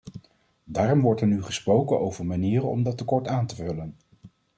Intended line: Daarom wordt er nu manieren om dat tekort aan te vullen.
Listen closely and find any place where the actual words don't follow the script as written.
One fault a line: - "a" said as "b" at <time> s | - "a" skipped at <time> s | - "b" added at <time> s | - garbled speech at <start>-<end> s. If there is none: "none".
- "gesproken over" added at 1.4 s